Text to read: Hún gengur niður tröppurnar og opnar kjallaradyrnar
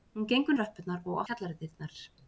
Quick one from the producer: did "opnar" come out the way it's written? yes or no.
no